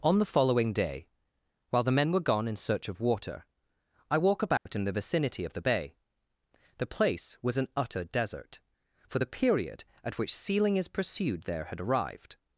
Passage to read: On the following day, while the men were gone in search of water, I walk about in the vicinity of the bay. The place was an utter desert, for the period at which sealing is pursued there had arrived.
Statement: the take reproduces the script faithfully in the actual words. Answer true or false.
true